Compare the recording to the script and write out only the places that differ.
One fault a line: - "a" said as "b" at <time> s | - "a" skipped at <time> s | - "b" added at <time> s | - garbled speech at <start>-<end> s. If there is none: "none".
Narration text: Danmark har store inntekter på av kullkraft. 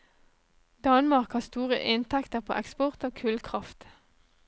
- "eksport" added at 2.6 s